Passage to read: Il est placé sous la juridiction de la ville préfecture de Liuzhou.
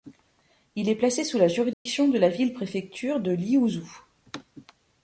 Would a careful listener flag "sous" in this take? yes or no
no